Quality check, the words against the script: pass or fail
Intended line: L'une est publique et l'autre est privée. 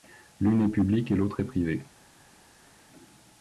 pass